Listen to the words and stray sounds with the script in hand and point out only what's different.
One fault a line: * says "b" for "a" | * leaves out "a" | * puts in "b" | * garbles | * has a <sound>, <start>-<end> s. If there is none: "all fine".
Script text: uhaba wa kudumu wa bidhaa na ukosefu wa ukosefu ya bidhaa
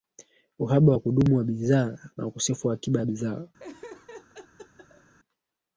* says "akiba" for "ukosefu"
* has a laugh, 3.6-5.1 s